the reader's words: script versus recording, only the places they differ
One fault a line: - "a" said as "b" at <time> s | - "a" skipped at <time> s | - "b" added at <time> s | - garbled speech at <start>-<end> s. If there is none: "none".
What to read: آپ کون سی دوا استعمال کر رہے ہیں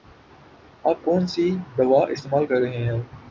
none